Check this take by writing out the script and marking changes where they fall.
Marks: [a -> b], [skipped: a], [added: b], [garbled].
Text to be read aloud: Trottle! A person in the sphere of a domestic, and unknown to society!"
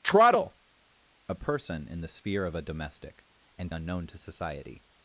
Trottle! A person in the sphere of a domestic, and unknown to society!"